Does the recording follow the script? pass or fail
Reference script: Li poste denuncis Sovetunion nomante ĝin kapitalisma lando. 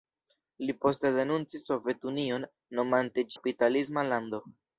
fail